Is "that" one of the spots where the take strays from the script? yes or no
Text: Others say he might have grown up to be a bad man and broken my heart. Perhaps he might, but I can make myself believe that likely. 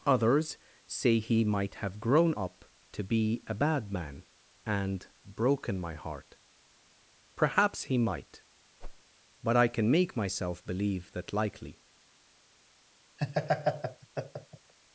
no